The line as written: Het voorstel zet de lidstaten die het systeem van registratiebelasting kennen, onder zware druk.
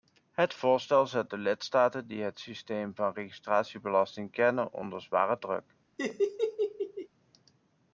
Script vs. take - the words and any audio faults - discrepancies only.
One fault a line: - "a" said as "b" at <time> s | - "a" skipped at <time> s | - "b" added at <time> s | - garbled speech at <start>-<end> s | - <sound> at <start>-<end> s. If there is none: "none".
- laugh at 6.0-7.1 s